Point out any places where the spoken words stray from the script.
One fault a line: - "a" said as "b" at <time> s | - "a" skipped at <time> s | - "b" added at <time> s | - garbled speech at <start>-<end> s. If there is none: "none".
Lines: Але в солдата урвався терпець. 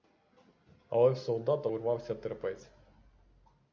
none